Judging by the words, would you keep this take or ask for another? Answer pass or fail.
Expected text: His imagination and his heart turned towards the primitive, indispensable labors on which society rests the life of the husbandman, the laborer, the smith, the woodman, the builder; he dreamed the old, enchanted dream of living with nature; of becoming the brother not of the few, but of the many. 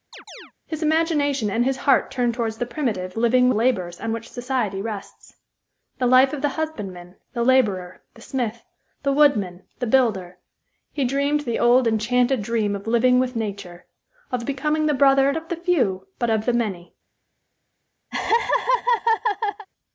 fail